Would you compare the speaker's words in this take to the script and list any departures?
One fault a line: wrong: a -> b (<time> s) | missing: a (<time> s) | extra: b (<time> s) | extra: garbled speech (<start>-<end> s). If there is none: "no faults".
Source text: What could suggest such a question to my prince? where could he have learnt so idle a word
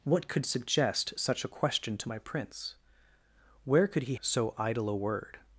missing: have learnt (4.1 s)